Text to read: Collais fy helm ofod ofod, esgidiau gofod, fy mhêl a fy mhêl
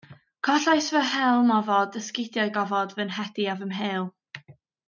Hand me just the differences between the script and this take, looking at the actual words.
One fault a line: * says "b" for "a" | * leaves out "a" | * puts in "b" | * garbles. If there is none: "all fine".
* leaves out "ofod"
* says "nhedi" for "mhêl"